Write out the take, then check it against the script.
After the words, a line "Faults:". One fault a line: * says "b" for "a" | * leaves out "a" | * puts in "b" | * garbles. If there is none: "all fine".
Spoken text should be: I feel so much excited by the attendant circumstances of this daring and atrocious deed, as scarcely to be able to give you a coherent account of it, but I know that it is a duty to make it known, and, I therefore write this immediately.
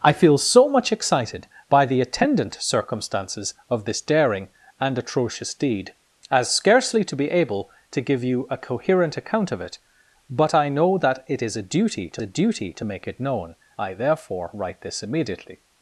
I feel so much excited by the attendant circumstances of this daring and atrocious deed, as scarcely to be able to give you a coherent account of it, but I know that it is a duty to a duty to make it known, I therefore write this immediately.
Faults:
* puts in "a duty to"
* leaves out "and"